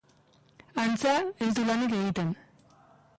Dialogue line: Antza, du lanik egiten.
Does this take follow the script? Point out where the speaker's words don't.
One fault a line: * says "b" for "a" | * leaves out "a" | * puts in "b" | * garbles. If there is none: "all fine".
* puts in "ez"